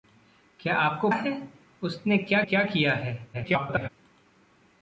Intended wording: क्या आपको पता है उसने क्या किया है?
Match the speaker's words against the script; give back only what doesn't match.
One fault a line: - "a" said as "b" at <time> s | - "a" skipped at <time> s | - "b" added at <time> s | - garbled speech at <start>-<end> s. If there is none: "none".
- "पता" skipped at 1.1 s
- "क्या" added at 2.4 s
- garbled speech at 3.3-3.9 s